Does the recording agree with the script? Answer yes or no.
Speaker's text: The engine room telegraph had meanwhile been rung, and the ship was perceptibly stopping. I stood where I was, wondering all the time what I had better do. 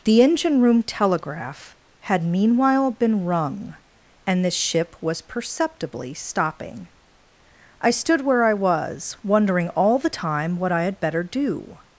yes